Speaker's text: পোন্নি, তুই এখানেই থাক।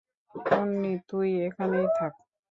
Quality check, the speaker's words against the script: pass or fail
pass